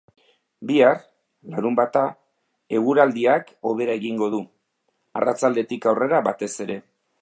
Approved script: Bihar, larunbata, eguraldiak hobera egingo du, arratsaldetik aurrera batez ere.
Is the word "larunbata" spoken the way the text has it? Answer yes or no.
yes